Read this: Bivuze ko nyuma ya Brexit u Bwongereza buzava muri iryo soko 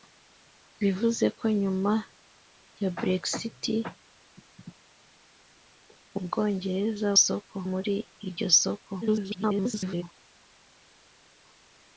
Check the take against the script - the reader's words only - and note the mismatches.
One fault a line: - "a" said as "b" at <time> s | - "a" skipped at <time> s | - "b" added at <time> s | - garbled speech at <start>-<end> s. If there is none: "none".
- "buzava" said as "soko" at 7.2 s
- garbled speech at 9.0-10.0 s